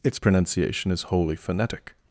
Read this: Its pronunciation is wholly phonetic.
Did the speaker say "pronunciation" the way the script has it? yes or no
yes